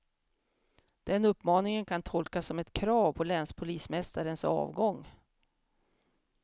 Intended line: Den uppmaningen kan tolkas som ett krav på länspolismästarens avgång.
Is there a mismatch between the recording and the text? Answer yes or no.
no